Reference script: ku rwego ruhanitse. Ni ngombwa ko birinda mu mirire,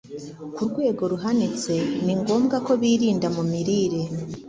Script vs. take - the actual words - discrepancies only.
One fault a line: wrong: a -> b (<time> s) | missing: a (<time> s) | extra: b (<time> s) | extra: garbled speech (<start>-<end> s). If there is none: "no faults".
no faults